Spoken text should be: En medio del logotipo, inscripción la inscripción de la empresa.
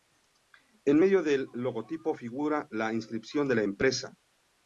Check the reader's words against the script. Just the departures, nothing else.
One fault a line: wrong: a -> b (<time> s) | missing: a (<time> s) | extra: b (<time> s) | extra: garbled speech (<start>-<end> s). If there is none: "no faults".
wrong: inscripción -> figura (2.1 s)